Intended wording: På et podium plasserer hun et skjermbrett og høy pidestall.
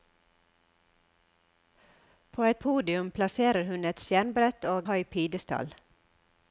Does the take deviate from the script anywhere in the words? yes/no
no